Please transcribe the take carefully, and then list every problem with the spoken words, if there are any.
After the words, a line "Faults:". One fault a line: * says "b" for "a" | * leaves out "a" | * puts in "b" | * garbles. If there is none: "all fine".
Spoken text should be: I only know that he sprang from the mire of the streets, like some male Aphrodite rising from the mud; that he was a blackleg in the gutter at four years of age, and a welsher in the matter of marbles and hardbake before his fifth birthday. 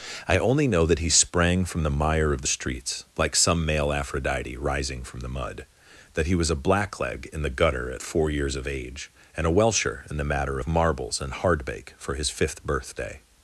I only know that he sprang from the mire of the streets, like some male Aphrodite rising from the mud; that he was a blackleg in the gutter at four years of age, and a welsher in the matter of marbles and hardbake for his fifth birthday.
Faults:
* says "for" for "before"